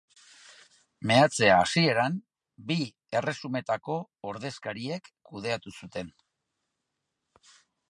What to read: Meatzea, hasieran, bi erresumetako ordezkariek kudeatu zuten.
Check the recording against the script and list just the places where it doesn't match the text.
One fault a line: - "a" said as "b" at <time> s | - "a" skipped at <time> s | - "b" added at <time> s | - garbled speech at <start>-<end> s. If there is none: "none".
none